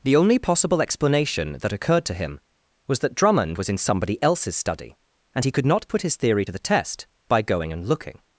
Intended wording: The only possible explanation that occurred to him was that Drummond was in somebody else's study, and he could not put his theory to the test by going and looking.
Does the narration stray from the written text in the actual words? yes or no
no